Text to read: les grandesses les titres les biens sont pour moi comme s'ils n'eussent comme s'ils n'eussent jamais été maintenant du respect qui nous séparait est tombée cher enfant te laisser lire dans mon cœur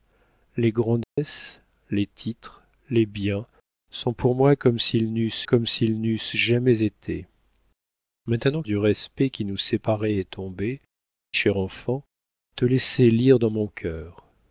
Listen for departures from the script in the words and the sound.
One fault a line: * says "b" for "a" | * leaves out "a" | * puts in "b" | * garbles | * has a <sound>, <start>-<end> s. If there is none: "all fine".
* has a dropout, 1.0-1.2 s